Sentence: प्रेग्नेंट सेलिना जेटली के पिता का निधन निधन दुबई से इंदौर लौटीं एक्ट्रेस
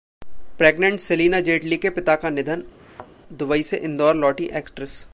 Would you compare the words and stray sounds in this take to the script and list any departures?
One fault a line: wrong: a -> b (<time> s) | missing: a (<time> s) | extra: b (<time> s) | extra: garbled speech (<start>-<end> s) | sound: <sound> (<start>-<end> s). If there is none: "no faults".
missing: निधन (2.6 s)
sound: thud (2.8-3.1 s)